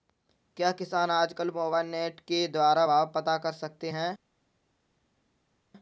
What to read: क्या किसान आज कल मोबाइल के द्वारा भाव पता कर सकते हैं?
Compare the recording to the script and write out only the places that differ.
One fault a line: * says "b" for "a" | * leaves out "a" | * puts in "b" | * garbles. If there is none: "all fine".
* puts in "नेट"